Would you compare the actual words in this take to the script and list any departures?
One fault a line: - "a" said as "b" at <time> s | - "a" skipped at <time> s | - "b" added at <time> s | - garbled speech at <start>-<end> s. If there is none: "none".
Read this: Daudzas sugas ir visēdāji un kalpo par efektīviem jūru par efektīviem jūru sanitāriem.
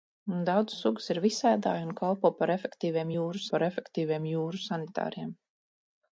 none